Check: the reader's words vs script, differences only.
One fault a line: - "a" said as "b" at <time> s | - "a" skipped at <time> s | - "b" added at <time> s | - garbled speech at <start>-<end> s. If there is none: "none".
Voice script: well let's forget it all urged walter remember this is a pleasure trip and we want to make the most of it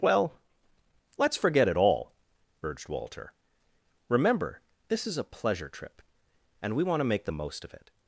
none